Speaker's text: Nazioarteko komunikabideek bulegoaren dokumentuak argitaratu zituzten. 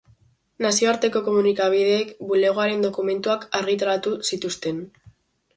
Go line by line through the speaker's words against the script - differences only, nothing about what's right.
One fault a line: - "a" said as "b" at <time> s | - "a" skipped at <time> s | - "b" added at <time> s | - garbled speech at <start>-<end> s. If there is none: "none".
none